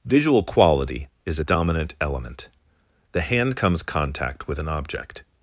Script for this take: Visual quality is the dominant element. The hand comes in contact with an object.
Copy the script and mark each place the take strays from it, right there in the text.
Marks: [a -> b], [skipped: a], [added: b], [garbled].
Visual quality is [the -> a] dominant element. The hand comes [skipped: in] contact with an object.